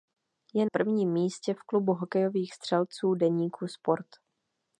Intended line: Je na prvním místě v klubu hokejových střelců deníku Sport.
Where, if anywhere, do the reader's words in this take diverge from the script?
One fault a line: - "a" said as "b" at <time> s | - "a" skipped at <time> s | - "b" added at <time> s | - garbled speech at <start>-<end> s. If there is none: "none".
- "na" skipped at 0.7 s